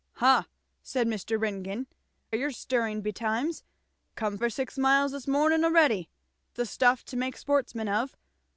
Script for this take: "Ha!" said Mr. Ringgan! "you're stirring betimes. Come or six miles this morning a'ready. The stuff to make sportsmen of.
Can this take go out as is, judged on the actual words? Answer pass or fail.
pass